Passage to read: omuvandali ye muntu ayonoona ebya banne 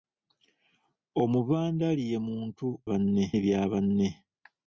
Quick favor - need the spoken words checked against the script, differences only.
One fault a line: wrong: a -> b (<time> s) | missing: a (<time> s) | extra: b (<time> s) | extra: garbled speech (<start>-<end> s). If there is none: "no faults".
wrong: ayonoona -> banne (2.9 s)